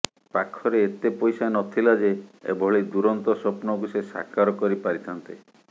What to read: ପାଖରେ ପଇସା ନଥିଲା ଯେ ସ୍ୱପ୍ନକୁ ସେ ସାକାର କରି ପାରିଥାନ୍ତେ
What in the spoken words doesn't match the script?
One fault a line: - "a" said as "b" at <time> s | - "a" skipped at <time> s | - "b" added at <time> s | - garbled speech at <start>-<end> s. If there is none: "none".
- "ଏତେ" added at 0.8 s
- "ଏଭଳି ଦୂରନ୍ତ" added at 2.5 s